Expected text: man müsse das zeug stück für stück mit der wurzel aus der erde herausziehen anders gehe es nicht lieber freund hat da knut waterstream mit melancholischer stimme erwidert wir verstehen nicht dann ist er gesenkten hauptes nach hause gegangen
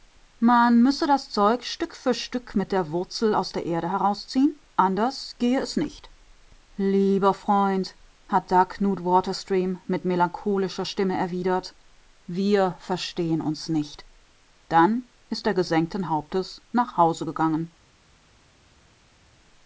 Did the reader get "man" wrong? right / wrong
right